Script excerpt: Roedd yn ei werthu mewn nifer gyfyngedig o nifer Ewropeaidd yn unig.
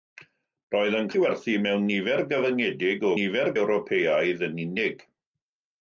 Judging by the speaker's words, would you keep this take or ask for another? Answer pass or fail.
pass